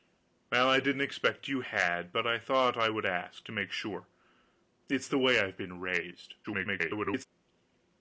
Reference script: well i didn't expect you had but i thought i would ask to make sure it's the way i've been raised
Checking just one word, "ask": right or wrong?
right